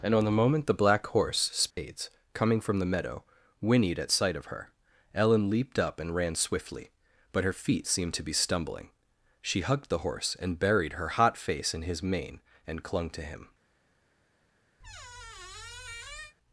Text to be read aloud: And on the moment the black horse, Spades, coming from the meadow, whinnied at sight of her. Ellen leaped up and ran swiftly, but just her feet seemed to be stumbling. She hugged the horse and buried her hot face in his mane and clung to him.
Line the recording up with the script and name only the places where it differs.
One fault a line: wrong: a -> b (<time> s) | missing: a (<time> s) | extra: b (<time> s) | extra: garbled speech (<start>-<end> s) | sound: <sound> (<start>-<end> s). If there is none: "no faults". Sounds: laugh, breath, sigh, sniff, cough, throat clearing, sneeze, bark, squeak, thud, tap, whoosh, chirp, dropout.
sound: dropout (1.7-1.8 s)
missing: just (7.4 s)
sound: squeak (14.8-16.3 s)